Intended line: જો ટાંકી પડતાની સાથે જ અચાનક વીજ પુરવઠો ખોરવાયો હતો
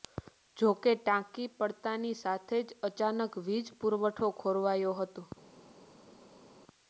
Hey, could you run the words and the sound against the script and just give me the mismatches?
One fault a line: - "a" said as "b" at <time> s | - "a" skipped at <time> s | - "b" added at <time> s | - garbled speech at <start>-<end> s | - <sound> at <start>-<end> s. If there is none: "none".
- "કે" added at 0.8 s